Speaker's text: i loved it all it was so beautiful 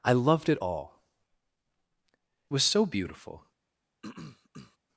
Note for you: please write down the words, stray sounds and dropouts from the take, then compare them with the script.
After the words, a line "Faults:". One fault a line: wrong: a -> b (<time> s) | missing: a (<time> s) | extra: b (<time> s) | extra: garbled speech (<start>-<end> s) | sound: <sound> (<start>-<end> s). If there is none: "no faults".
i loved it all was so beautiful
Faults:
missing: it (1.0 s)
sound: throat clearing (4.0-4.8 s)